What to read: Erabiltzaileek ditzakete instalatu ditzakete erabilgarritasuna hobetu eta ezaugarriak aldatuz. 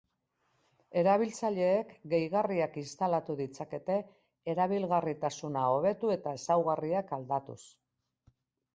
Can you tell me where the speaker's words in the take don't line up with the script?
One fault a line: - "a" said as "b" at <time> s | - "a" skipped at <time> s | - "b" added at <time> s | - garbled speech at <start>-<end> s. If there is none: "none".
- "ditzakete" said as "gehigarriak" at 2.1 s